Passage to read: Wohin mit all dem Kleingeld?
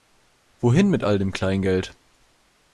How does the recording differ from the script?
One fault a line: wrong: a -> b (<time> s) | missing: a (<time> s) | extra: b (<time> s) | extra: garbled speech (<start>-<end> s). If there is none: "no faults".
no faults